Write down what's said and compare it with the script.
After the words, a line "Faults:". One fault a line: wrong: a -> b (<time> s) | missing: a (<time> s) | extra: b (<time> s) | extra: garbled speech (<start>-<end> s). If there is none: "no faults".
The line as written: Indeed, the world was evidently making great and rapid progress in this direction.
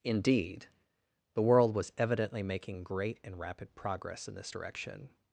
Indeed, the world was evidently making great and rapid progress in this direction.
Faults:
no faults